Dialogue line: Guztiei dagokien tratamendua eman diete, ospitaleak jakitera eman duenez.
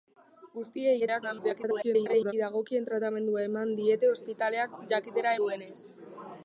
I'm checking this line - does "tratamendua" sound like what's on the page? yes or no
yes